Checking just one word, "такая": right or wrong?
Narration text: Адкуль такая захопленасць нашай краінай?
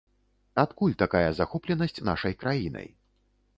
right